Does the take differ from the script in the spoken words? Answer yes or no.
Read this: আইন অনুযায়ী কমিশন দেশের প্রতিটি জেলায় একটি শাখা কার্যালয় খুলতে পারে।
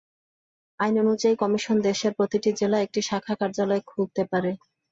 no